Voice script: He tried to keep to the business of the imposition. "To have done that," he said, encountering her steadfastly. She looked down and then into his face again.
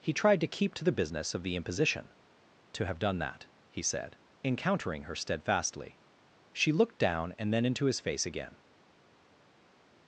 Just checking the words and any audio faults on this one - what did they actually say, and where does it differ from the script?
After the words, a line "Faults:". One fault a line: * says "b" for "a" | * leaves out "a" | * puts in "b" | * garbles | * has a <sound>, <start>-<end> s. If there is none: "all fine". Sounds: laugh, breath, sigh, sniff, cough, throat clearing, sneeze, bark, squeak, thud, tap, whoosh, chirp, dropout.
He tried to keep to the business of the imposition. "To have done that," he said, encountering her steadfastly. She looked down and then into his face again.
Faults:
all fine